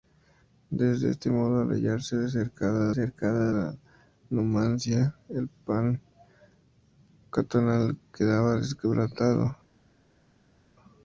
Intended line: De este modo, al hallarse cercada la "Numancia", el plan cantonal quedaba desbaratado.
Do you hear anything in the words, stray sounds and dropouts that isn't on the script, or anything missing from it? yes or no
yes